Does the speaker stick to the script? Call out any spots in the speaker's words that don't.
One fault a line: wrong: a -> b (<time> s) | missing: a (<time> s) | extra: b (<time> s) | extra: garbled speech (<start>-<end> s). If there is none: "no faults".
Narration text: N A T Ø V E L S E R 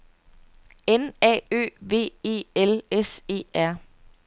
missing: T (1.4 s)